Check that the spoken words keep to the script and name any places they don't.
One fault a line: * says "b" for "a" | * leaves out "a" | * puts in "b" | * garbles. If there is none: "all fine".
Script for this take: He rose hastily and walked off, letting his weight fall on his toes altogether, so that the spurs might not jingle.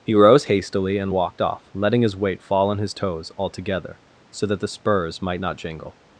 all fine